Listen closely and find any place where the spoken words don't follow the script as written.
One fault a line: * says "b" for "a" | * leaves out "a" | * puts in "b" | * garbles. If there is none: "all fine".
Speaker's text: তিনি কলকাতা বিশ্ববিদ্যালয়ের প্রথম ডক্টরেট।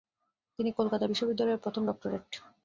all fine